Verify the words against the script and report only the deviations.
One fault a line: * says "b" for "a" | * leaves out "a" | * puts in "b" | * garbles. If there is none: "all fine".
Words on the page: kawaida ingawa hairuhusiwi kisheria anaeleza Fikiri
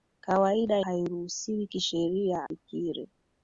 * leaves out "ingawa"
* leaves out "anaeleza"